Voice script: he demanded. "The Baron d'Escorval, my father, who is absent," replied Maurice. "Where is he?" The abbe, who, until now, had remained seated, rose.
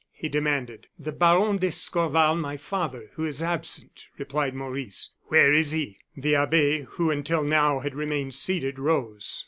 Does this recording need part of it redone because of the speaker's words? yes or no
no